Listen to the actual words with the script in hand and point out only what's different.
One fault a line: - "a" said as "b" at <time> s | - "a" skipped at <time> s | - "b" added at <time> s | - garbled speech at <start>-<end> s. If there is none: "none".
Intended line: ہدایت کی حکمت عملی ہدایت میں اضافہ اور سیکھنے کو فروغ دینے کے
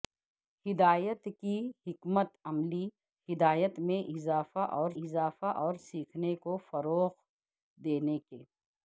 - "اضافہ اور" added at 5.0 s